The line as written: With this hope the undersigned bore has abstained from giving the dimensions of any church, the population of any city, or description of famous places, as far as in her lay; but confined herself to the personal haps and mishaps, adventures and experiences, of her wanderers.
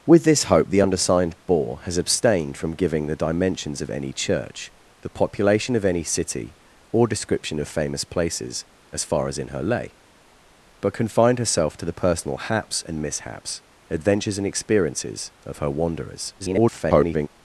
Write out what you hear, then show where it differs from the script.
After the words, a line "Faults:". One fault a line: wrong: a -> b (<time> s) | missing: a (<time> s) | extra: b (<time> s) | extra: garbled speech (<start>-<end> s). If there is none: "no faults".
With this hope the undersigned bore has abstained from giving the dimensions of any church, the population of any city, or description of famous places, as far as in her lay; but confined herself to the personal haps and mishaps, adventures and experiences, of her wanderers. [garbled]
Faults:
extra: garbled speech (16.4-17.3 s)